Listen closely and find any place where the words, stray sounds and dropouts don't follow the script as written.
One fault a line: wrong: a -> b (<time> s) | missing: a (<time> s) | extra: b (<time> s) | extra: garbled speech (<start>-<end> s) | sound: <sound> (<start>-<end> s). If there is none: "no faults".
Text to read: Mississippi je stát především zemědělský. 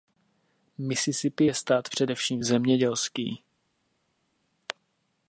no faults